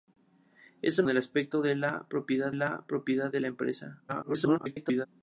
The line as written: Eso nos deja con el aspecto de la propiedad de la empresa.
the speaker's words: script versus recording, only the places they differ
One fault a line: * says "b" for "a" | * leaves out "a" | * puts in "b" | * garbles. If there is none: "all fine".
* leaves out "nos deja con"
* puts in "la propiedad"
* garbles